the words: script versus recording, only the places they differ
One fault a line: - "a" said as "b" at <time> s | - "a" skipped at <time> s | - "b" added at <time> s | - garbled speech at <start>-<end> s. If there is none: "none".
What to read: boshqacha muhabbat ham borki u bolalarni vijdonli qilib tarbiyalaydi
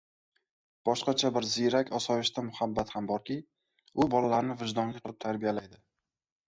- "bir ziyrak osoyishta" added at 1.4 s